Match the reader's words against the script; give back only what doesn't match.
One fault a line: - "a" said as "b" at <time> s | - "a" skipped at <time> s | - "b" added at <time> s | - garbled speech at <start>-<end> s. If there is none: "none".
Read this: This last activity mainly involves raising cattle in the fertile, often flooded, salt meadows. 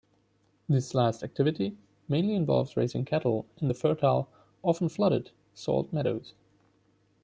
none